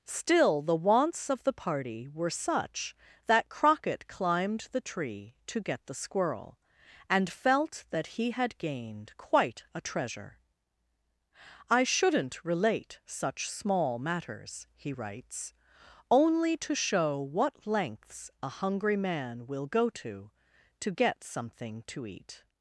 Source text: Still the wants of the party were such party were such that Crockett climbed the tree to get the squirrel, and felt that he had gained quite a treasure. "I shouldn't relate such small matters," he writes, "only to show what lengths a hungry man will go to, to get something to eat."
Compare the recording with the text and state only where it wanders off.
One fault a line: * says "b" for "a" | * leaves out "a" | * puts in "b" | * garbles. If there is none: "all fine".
* leaves out "party were such"